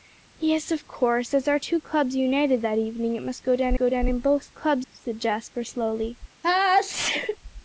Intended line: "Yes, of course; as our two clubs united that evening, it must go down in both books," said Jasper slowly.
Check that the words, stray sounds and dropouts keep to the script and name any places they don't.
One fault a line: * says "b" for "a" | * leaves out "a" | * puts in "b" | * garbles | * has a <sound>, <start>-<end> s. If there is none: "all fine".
* puts in "go down"
* says "clubs" for "books"
* has a sneeze, 6.4-7.4 s